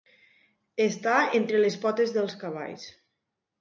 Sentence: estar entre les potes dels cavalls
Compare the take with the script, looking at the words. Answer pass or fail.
pass